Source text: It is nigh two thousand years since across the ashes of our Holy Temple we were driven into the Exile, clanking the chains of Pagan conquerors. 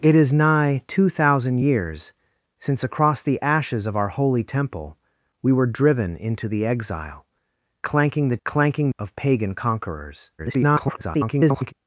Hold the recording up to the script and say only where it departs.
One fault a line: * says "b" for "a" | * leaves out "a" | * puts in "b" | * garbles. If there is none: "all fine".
* says "clanking" for "chains"
* garbles